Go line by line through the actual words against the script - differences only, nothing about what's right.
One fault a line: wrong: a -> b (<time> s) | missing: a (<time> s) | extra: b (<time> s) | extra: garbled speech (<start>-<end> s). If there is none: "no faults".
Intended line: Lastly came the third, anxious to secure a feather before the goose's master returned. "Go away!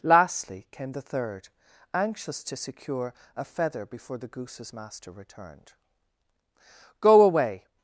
no faults